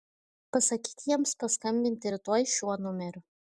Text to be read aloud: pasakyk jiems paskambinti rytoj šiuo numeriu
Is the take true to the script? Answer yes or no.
yes